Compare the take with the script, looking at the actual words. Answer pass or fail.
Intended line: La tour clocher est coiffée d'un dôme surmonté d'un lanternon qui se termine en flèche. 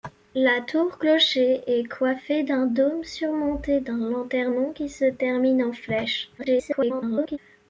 fail